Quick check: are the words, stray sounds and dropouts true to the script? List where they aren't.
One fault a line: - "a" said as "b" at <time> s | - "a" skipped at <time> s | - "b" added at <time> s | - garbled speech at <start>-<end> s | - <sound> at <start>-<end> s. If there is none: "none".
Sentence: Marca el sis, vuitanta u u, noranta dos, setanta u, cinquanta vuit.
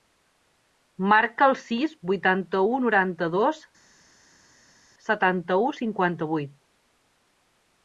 - "u" skipped at 2.8 s